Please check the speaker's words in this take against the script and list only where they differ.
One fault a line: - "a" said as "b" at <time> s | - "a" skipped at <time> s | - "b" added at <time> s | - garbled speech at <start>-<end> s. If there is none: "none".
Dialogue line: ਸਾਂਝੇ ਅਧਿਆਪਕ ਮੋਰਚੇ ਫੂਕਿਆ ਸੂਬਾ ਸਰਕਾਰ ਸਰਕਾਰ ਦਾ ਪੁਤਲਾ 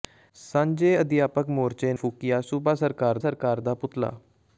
none